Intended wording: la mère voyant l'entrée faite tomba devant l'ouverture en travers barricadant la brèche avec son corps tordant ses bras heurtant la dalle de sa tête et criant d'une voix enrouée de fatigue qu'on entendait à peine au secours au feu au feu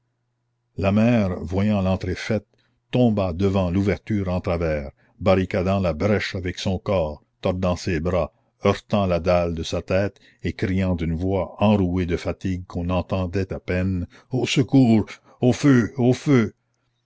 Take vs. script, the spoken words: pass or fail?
pass